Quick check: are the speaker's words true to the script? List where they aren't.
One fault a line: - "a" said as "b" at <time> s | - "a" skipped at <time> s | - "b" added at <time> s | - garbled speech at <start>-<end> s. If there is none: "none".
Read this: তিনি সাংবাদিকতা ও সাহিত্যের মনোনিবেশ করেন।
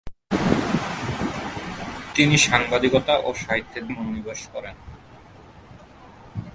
none